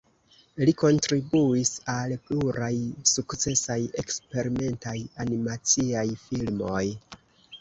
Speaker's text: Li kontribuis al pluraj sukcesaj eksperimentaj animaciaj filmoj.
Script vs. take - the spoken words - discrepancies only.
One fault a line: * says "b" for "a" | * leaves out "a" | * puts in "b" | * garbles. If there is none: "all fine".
all fine